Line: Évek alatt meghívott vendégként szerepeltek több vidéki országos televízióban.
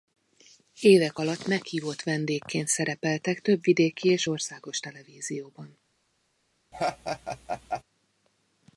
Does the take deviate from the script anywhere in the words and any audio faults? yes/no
yes